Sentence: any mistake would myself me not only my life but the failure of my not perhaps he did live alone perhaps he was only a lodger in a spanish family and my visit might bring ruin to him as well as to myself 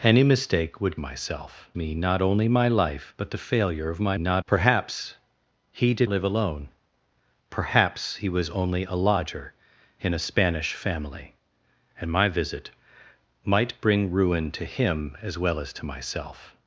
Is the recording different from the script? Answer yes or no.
no